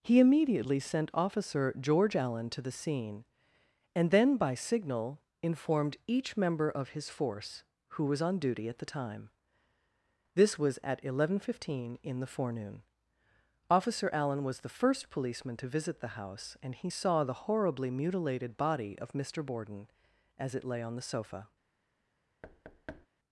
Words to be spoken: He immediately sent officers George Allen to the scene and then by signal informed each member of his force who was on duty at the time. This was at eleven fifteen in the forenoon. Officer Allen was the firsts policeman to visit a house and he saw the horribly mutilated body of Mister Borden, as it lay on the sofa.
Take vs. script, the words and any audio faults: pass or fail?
fail